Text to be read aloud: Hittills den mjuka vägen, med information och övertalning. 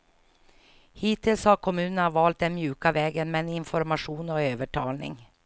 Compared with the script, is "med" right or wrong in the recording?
right